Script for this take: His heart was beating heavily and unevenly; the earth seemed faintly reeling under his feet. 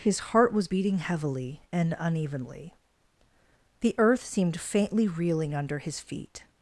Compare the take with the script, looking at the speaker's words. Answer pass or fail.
pass